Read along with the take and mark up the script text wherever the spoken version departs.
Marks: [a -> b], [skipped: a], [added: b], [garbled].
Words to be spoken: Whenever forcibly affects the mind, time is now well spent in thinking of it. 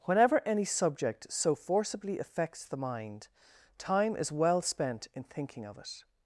Whenever [added: any subject so] forcibly affects the mind, time is [skipped: now] well spent in thinking of it.